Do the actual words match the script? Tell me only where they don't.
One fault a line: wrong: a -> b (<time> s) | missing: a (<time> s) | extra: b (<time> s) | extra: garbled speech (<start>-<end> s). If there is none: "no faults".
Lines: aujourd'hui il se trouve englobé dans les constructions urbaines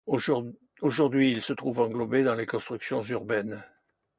no faults